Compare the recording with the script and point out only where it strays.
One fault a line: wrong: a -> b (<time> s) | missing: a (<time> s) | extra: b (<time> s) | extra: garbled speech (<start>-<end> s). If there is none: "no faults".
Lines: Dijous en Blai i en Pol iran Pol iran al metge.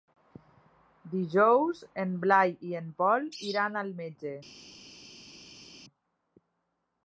missing: Pol iran (3.8 s)